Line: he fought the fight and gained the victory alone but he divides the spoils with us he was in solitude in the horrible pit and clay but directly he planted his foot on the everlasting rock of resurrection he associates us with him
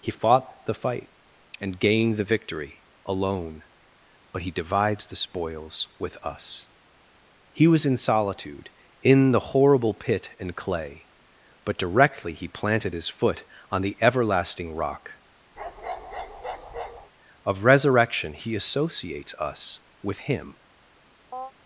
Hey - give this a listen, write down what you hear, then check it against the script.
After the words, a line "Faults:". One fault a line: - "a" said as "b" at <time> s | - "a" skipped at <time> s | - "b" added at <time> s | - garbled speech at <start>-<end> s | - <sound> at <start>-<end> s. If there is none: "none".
he fought the fight and gained the victory alone but he divides the spoils with us he was in solitude in the horrible pit and clay but directly he planted his foot on the everlasting rock of resurrection he associates us with him
Faults:
- bark at 15.6-17.1 s
- chirp at 21.3-21.5 s